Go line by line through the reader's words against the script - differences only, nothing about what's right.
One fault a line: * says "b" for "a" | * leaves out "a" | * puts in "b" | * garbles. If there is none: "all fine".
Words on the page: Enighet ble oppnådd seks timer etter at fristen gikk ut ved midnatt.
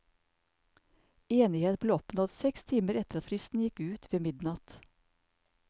all fine